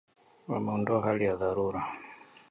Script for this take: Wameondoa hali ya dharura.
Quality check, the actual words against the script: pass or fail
pass